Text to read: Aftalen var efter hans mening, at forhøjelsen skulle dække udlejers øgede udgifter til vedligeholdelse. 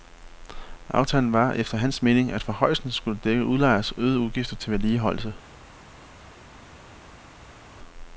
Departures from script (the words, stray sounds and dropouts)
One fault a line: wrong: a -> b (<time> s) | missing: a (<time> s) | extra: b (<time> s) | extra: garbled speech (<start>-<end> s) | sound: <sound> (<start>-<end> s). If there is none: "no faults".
no faults